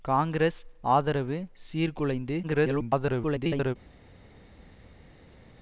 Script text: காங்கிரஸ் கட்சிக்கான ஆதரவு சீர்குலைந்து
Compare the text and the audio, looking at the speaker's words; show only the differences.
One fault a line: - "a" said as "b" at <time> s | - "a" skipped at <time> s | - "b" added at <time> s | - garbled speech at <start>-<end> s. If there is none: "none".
- "கட்சிக்கான" skipped at 0.6 s
- garbled speech at 2.4-3.8 s